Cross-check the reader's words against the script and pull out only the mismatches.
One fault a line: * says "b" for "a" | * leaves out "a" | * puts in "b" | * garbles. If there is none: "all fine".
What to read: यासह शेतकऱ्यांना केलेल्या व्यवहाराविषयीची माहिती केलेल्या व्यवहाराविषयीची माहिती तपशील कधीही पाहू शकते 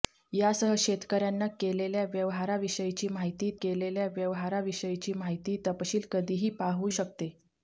all fine